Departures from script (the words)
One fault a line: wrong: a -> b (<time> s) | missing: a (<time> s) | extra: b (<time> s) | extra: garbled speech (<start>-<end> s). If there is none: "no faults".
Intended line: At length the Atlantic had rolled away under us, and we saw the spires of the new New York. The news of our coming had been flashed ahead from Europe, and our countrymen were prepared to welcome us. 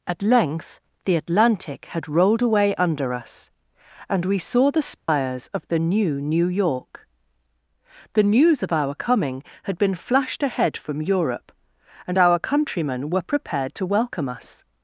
no faults